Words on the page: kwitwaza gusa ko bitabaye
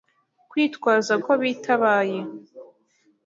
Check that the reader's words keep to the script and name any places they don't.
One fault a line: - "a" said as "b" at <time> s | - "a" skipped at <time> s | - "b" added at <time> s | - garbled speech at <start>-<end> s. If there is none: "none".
- "gusa" skipped at 1.1 s